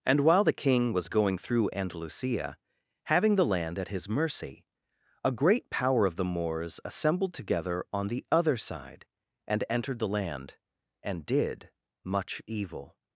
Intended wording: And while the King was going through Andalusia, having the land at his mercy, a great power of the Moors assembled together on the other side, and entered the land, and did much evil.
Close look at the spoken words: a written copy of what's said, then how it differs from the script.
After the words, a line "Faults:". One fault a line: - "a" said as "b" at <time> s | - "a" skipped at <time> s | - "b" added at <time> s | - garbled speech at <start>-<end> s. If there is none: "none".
And while the King was going through Andalusia, having the land at his mercy, a great power of the Moors assembled together on the other side, and entered the land, and did much evil.
Faults:
none